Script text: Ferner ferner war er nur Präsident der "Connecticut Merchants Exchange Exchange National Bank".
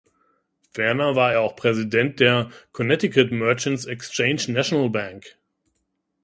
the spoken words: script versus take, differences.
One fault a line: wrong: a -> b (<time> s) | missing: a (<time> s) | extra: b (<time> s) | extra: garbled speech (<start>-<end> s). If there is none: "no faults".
missing: ferner (1.1 s)
wrong: nur -> auch (1.4 s)
missing: Exchange (4.4 s)